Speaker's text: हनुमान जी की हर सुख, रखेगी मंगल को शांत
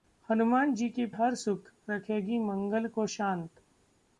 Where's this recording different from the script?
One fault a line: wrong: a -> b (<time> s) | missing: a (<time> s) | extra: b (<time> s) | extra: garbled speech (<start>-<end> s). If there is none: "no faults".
no faults